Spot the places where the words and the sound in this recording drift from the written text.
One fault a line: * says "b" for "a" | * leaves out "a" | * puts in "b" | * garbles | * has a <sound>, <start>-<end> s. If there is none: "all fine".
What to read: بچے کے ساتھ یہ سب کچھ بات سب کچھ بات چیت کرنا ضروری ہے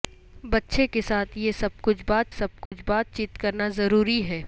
* has a dropout, 2.7-2.7 s